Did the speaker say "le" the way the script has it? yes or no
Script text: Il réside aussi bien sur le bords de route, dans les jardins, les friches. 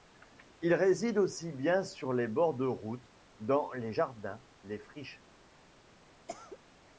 no